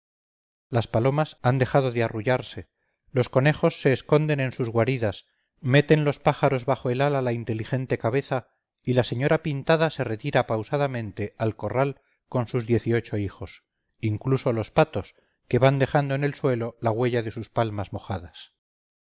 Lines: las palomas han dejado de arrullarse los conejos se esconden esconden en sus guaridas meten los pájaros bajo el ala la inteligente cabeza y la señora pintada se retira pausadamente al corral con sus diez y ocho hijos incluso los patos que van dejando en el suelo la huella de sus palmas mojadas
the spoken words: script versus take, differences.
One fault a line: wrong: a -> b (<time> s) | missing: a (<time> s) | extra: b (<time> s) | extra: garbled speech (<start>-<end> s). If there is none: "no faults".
missing: esconden (4.4 s)